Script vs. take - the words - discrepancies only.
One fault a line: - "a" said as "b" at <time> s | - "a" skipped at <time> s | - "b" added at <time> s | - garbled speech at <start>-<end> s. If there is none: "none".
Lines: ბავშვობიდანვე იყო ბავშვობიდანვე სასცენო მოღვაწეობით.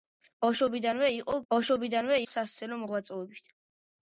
none